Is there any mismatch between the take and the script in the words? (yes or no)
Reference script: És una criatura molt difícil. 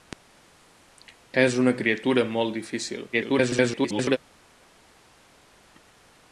yes